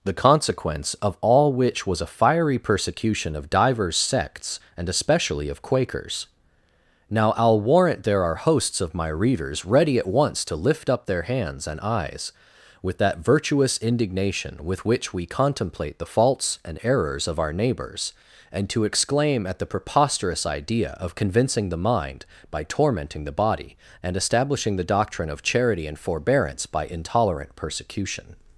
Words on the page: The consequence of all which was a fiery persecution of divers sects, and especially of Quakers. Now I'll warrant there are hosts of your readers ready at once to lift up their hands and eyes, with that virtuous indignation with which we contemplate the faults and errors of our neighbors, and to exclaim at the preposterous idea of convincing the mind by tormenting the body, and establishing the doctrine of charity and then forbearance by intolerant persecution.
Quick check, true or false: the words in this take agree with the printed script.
false